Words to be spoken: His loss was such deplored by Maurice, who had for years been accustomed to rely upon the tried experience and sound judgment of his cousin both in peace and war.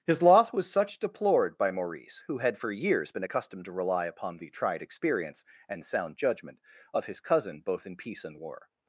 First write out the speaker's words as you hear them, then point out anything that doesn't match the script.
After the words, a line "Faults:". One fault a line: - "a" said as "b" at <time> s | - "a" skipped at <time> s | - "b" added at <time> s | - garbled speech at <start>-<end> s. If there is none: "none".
His loss was such deplored by Maurice, who had for years been accustomed to rely upon the tried experience and sound judgment of his cousin both in peace and war.
Faults:
none